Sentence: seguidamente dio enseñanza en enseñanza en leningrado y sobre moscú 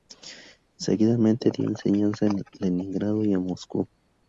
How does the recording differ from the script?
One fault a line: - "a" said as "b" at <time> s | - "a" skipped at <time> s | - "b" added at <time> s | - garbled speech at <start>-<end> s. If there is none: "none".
- "enseñanza en" skipped at 2.4 s
- "sobre" said as "en" at 3.3 s